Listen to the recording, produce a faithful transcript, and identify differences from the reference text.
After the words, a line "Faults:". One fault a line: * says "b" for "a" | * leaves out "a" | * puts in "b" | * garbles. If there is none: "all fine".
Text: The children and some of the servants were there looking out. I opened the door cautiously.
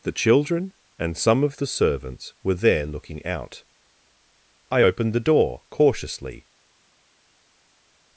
The children and some of the servants were there looking out. I opened the door cautiously.
Faults:
all fine